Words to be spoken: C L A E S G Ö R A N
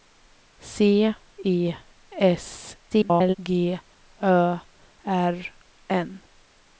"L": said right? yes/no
no